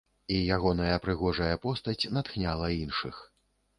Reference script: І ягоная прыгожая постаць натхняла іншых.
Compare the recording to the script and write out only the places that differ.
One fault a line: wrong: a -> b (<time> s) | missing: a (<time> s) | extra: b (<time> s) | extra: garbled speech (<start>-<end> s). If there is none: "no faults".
no faults